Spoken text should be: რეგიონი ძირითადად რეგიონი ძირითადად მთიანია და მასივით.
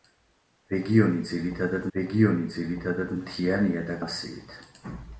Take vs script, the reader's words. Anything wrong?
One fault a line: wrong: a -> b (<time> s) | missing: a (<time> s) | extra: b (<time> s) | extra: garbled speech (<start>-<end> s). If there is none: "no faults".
no faults